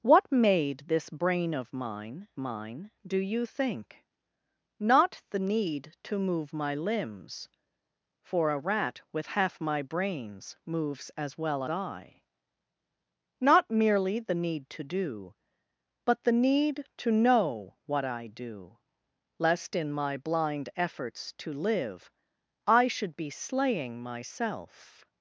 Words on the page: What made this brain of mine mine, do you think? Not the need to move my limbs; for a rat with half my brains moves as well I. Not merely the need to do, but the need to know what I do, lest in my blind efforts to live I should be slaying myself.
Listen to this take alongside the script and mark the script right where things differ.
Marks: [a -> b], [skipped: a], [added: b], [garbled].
What made this brain of mine mine, do you think? Not the need to move my limbs; for a rat with half my brains moves as well I. Not merely the need to do, but the need to know what I do, lest in my blind efforts to live I should be slaying myself.